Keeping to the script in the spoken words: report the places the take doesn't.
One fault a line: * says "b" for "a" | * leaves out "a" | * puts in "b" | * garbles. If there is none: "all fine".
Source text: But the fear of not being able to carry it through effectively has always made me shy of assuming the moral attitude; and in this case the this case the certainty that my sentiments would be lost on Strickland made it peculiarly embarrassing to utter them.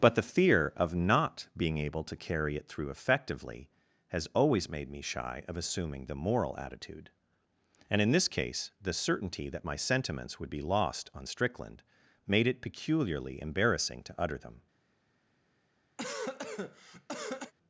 * leaves out "this case the"